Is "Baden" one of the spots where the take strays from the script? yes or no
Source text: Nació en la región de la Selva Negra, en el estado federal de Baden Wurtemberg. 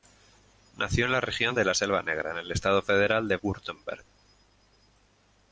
yes